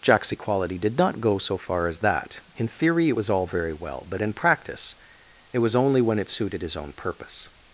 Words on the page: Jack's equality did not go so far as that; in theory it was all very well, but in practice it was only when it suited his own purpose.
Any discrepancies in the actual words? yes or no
no